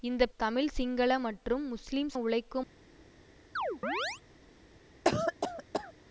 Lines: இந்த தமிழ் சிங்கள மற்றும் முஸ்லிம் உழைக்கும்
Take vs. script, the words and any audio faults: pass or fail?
fail